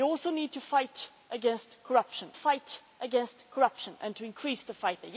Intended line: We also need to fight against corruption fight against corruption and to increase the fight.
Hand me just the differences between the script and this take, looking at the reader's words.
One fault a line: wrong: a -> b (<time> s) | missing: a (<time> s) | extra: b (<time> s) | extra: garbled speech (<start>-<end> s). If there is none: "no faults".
no faults